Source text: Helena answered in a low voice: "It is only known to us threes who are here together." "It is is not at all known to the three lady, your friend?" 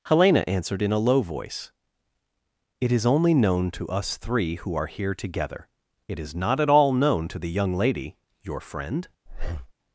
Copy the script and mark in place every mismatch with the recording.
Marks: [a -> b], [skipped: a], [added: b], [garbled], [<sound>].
Helena answered in a low voice: "It is only known to us [threes -> three] who are here together." "It is [skipped: is] not at all known to the [three -> young] lady, your friend?" [breath]